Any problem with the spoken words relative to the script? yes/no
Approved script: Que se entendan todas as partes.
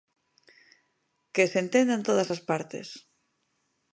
no